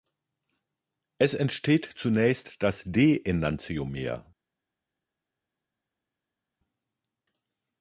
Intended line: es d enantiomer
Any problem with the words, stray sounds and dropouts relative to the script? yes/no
yes